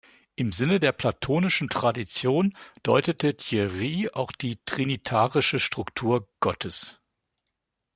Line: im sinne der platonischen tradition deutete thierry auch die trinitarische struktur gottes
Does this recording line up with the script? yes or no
yes